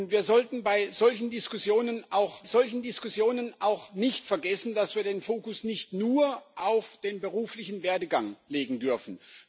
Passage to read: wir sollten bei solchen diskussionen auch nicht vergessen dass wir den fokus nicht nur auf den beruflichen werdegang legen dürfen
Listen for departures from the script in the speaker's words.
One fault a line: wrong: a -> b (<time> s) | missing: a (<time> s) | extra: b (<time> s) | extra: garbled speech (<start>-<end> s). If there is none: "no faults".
extra: solchen diskussionen auch (2.4 s)